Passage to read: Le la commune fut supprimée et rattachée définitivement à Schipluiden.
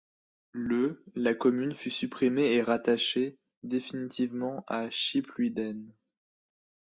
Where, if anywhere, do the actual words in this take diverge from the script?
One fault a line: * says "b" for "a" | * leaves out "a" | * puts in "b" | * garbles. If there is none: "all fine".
all fine